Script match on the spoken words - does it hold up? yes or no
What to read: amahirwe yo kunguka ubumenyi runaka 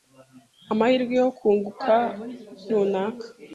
no